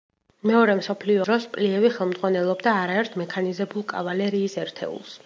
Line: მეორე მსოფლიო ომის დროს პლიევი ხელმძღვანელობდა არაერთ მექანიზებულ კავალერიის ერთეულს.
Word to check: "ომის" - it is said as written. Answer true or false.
false